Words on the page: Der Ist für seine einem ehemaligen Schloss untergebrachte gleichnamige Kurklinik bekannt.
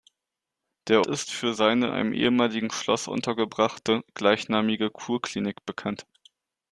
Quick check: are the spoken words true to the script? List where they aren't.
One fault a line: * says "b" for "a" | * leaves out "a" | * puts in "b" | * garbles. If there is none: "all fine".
all fine